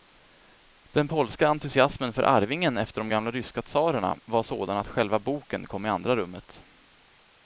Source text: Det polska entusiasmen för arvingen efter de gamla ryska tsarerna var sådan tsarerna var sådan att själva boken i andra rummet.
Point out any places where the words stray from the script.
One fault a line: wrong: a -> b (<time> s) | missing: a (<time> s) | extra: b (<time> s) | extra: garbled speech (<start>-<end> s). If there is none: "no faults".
wrong: Det -> Den (0.8 s)
missing: tsarerna var sådan (4.8 s)
extra: kom (5.7 s)